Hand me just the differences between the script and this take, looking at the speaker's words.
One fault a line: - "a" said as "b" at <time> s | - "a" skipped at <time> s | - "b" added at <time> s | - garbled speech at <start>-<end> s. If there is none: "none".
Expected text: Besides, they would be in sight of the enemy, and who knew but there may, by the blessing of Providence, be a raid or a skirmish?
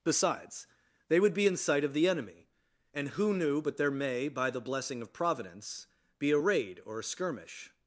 none